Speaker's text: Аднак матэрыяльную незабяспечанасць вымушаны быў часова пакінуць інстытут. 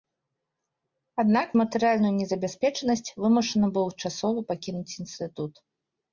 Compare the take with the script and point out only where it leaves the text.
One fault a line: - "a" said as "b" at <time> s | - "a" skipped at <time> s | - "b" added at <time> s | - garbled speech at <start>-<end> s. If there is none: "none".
none